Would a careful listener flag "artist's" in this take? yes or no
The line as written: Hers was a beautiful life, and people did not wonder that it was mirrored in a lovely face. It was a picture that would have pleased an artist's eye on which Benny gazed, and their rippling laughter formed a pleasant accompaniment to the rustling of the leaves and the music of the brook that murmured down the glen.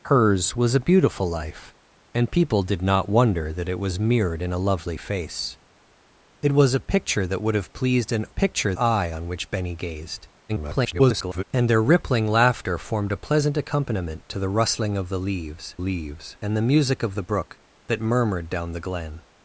yes